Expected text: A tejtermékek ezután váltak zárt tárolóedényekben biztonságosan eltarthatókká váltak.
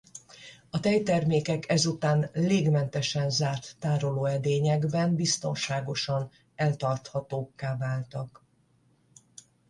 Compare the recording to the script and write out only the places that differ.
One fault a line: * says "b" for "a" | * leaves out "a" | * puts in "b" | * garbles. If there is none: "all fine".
* says "légmentesen" for "váltak"